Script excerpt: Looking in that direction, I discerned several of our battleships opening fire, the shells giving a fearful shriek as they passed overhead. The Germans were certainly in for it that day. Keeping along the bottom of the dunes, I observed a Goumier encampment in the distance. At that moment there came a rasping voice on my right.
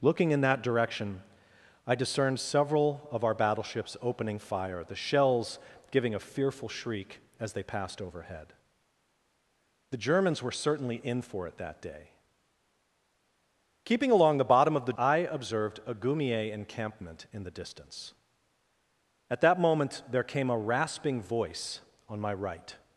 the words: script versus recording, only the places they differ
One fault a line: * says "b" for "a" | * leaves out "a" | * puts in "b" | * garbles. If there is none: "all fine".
* leaves out "dunes"